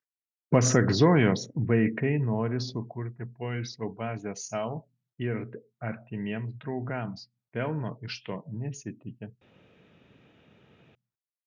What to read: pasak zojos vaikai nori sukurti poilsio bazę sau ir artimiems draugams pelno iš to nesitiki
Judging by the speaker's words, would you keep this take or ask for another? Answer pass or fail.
pass